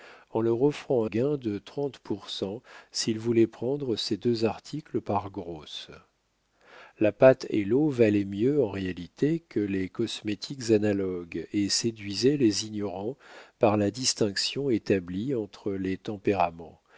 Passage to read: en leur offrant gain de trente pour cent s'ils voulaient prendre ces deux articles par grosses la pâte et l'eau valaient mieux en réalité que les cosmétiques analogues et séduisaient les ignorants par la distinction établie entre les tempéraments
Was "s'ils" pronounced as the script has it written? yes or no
yes